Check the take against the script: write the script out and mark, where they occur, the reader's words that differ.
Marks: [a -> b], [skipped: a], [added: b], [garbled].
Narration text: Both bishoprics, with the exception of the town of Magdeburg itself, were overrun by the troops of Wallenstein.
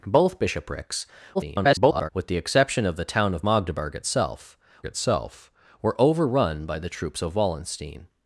Both bishoprics, [garbled] with the exception of the town of Magdeburg itself, [added: itself] were overrun by the troops of Wallenstein.